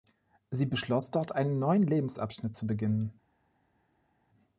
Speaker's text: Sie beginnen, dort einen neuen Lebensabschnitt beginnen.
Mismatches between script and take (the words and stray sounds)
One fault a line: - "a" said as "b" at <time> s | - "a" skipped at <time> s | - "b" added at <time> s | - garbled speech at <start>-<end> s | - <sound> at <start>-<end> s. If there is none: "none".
- "beginnen" said as "beschloss" at 0.7 s
- "zu" added at 2.5 s